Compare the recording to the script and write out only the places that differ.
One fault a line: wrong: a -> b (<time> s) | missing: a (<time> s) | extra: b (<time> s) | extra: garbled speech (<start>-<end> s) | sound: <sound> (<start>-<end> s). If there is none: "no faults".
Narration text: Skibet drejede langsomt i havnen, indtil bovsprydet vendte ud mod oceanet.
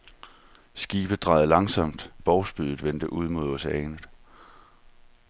missing: i havnen indtil (2.1 s)